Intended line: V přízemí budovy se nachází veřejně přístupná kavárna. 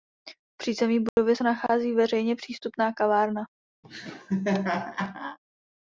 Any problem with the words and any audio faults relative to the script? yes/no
yes